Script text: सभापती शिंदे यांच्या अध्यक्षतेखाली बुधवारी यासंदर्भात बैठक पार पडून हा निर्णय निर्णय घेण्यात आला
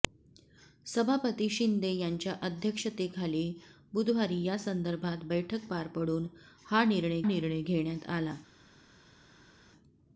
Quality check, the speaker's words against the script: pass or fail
pass